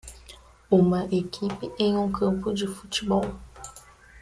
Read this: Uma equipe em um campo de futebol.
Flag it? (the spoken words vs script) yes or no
no